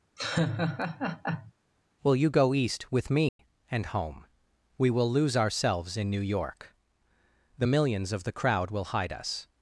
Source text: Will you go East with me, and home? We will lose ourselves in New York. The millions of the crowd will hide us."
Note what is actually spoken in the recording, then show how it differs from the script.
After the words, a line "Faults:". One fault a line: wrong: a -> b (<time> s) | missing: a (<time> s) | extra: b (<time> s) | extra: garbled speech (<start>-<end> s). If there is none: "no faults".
Will you go East with me, and home? We will lose ourselves in New York. The millions of the crowd will hide us."
Faults:
no faults